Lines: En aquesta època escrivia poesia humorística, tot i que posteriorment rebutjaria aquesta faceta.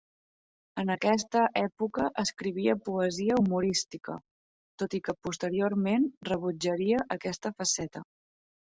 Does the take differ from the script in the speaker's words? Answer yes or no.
no